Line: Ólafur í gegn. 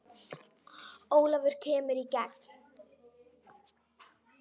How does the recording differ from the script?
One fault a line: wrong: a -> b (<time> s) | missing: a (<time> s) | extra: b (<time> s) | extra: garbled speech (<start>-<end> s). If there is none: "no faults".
extra: kemur (1.7 s)